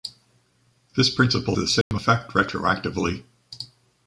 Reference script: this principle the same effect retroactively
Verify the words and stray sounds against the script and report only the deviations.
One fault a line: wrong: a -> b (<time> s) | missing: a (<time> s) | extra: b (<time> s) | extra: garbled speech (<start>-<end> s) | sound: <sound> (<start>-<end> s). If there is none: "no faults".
sound: dropout (1.8-1.9 s)